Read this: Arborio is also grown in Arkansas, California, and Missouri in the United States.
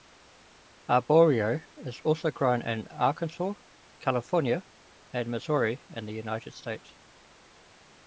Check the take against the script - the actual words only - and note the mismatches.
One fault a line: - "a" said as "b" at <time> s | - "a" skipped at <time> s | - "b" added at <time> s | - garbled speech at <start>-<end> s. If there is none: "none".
none